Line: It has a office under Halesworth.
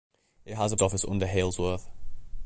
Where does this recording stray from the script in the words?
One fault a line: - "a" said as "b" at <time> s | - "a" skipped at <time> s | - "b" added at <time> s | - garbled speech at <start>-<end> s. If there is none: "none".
none